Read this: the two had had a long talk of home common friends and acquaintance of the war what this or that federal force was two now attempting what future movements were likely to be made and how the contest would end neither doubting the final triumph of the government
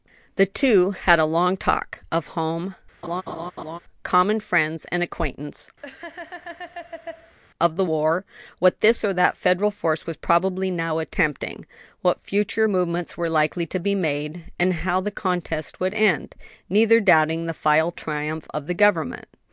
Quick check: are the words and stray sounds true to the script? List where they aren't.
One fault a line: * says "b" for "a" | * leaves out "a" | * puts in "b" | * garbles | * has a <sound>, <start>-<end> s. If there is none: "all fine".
* leaves out "had"
* has a laugh, 3.0-3.8 s
* has a laugh, 5.8-7.4 s
* says "probably" for "two"